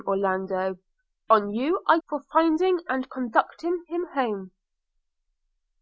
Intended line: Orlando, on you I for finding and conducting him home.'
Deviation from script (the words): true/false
false